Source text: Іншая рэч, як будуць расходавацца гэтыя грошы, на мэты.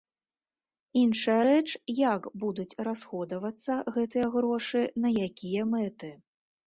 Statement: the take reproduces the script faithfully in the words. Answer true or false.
false